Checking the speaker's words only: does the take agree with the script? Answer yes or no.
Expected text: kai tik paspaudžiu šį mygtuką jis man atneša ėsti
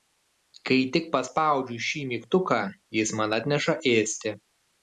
yes